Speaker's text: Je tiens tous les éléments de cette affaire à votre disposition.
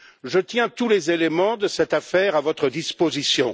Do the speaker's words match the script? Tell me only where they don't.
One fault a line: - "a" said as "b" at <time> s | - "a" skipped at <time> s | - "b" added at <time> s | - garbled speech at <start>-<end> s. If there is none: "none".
none